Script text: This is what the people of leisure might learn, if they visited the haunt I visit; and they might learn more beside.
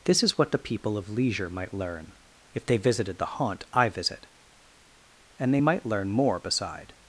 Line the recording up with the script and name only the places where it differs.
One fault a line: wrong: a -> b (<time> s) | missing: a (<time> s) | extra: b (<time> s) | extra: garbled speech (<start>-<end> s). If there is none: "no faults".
no faults